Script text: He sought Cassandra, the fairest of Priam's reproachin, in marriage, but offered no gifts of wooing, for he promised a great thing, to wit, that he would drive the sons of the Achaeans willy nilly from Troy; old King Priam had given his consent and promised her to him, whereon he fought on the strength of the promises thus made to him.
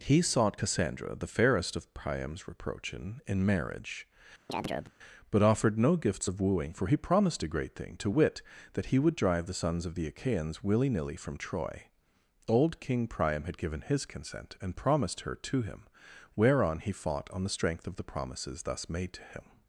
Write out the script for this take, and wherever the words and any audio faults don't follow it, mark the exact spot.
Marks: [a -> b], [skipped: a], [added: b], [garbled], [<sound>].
He sought Cassandra, the fairest of Priam's reproachin, in marriage, [chirp] but offered no gifts of wooing, for he promised a great thing, to wit, that he would drive the sons of the Achaeans willy nilly from Troy; old King Priam had given his consent and promised her to him, whereon he fought on the strength of the promises thus made to him.